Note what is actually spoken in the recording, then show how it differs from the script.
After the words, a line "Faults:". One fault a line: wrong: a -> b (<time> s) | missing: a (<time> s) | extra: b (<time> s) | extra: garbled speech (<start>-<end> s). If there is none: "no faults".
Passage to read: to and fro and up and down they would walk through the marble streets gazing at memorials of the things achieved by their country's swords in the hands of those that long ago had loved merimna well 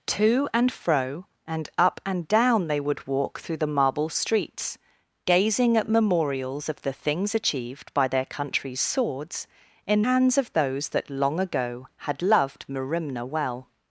to and fro and up and down they would walk through the marble streets gazing at memorials of the things achieved by their country's swords in hands of those that long ago had loved merimna well
Faults:
missing: the (10.0 s)